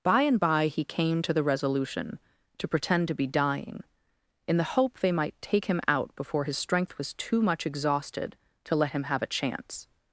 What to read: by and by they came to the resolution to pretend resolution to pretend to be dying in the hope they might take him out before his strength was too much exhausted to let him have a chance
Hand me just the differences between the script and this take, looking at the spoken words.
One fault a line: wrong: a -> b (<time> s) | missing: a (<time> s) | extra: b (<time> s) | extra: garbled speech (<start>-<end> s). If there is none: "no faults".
wrong: they -> he (0.7 s)
missing: resolution to pretend (3.1 s)